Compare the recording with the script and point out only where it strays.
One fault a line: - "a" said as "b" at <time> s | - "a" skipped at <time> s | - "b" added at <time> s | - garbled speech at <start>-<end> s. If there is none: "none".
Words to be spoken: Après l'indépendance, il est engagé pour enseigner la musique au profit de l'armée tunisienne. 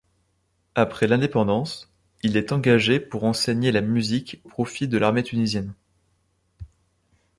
- "au" skipped at 4.4 s